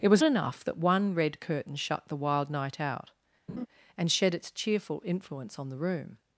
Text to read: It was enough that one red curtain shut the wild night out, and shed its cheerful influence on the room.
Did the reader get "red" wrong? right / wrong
right